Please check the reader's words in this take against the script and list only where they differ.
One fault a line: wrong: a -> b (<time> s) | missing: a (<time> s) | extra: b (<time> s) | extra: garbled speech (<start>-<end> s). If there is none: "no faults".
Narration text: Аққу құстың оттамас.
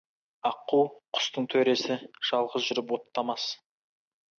extra: төресі жалғыз жүріп (1.6 s)